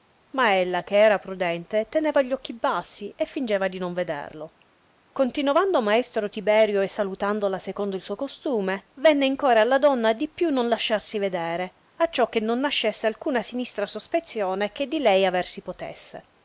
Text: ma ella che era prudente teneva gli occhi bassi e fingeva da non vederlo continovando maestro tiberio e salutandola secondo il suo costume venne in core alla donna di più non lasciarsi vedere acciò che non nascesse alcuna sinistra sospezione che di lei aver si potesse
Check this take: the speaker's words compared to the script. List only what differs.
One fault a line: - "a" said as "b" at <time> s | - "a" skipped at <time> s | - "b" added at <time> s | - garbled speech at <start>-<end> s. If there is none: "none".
- "da" said as "di" at 3.7 s